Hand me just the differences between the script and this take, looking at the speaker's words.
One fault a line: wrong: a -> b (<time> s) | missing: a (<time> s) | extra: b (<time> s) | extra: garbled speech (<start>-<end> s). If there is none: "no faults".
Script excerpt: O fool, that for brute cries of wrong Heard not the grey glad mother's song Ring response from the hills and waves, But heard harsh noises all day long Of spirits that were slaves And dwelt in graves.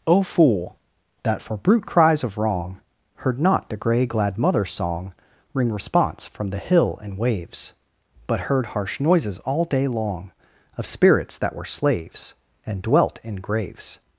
wrong: hills -> hill (6.6 s)